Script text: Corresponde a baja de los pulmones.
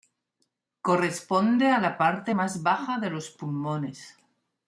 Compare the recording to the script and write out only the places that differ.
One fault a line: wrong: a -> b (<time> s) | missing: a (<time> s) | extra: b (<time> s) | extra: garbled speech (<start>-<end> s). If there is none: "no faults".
extra: la parte más (1.8 s)